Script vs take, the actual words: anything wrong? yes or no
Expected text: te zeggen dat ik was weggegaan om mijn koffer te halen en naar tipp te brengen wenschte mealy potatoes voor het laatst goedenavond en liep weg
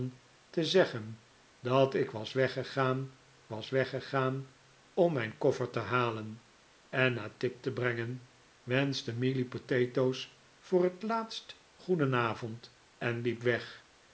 yes